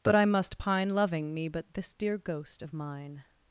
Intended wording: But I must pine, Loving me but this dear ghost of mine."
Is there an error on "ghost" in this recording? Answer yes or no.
no